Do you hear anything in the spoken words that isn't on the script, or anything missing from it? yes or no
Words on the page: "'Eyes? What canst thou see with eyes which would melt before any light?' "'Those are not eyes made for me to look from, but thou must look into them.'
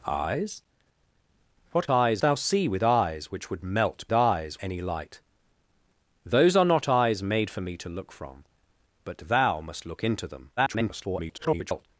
yes